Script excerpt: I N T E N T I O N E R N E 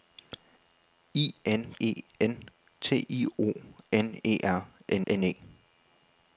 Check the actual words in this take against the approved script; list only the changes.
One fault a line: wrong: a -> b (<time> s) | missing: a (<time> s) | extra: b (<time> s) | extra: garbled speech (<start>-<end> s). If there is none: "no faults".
missing: T (1.8 s)
extra: N (5.1 s)